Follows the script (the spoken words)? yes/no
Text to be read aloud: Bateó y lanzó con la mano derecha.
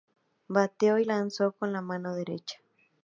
yes